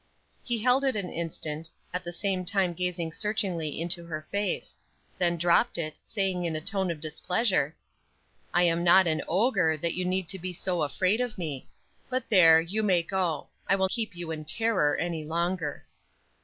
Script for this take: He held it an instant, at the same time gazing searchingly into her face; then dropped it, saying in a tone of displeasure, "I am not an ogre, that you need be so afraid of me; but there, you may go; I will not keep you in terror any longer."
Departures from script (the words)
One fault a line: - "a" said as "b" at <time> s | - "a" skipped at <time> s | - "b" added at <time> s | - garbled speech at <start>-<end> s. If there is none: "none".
- "not" skipped at 13.9 s